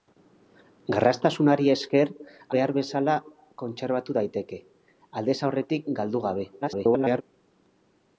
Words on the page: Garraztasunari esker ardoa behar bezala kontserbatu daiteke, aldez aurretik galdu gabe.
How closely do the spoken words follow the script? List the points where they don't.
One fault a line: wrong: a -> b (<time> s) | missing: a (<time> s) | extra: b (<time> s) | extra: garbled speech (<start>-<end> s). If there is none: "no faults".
missing: ardoa (2.1 s)
extra: garbled speech (6.6-7.2 s)